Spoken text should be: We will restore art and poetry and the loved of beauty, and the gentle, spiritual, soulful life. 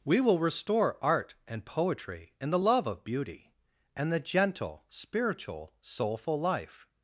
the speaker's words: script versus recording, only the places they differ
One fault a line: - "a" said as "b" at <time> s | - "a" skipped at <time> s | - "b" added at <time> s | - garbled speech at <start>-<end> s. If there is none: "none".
- "loved" said as "love" at 2.6 s